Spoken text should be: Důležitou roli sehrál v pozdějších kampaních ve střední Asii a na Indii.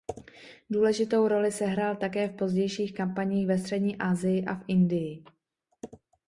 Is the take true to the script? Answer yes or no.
no